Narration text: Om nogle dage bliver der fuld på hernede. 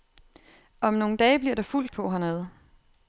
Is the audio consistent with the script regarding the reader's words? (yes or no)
yes